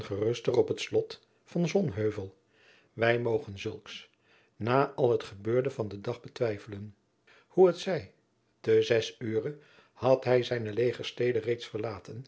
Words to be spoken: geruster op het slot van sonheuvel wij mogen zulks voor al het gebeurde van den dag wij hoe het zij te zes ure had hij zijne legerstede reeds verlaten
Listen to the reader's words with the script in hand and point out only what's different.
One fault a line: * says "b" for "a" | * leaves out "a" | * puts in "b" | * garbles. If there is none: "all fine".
* says "na" for "voor"
* says "betwijfelen" for "wij"